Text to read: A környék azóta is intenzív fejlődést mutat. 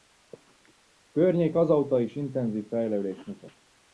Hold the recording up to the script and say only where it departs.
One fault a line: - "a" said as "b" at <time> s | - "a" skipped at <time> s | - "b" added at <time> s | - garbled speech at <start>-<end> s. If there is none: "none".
none